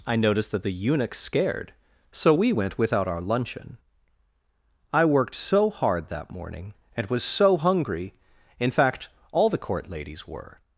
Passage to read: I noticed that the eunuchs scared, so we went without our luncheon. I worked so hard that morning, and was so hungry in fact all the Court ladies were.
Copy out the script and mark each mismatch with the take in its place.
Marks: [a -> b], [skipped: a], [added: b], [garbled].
I noticed that the eunuchs scared, so we went without our luncheon. I worked so hard that morning, and was so hungry in fact all the Court ladies were.